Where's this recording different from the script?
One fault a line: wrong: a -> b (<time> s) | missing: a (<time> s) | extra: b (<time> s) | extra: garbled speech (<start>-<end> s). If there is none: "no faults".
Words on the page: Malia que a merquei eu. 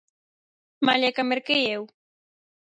no faults